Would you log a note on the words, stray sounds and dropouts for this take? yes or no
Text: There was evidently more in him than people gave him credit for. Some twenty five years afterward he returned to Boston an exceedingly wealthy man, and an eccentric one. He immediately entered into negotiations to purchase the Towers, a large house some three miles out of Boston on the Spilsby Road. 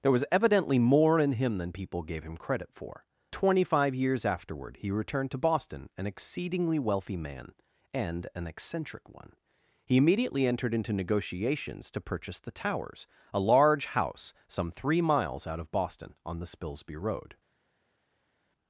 yes